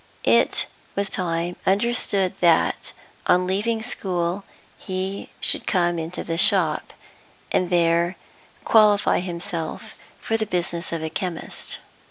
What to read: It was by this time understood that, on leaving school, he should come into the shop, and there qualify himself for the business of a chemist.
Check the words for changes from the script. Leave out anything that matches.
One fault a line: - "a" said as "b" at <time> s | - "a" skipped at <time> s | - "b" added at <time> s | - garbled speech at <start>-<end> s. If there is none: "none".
- "by this" skipped at 1.1 s